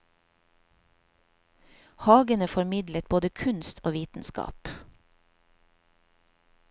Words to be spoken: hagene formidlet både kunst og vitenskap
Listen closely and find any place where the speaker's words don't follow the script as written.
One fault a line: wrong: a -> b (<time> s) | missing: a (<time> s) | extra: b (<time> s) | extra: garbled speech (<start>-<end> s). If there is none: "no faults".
no faults